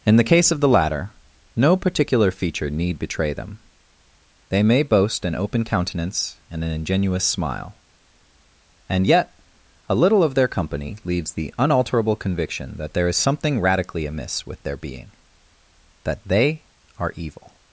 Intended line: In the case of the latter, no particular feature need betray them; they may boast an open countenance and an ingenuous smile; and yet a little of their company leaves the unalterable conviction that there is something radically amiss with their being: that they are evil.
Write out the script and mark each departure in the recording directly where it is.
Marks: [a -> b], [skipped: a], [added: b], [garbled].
In the case of the latter, no particular feature need betray them; they may boast an open countenance and an ingenuous smile; and yet a little of their company leaves the unalterable conviction that there is something radically amiss with their being: that they are evil.